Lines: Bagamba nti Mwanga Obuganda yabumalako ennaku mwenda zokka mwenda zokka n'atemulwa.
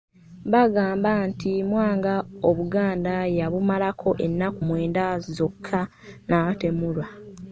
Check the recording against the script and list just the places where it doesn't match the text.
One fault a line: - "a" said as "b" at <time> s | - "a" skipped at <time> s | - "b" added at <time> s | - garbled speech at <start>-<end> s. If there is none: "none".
- "mwenda zokka" skipped at 5.8 s